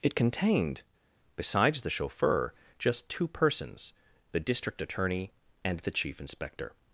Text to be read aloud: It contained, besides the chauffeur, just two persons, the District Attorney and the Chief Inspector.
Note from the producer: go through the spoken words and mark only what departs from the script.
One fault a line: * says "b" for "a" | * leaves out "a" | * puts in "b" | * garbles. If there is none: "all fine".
all fine